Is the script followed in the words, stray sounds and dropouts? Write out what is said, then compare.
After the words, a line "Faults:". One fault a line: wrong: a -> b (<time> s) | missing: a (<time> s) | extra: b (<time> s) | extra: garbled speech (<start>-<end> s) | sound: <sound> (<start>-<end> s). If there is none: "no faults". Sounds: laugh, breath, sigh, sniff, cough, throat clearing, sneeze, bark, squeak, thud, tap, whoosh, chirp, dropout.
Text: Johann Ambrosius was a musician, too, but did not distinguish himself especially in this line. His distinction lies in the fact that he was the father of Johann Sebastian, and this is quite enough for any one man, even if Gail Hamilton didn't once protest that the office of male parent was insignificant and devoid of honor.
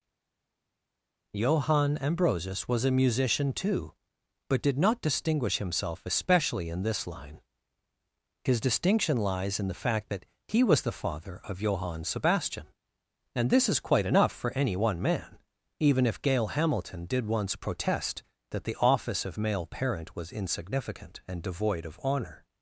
Johann Ambrosius was a musician, too, but did not distinguish himself especially in this line. His distinction lies in the fact that he was the father of Johann Sebastian, and this is quite enough for any one man, even if Gail Hamilton did once protest that the office of male parent was insignificant and devoid of honor.
Faults:
wrong: didn't -> did (17.0 s)